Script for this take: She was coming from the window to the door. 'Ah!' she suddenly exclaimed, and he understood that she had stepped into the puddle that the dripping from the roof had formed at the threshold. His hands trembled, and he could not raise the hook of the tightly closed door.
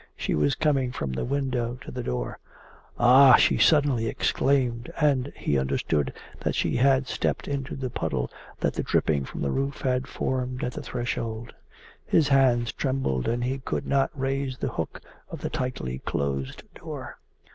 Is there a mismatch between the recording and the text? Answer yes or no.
no